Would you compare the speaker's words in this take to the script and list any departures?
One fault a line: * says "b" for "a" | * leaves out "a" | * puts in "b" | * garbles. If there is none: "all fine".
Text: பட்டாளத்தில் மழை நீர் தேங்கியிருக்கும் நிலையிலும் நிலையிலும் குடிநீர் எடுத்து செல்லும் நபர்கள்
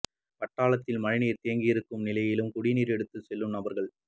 * leaves out "நிலையிலும்"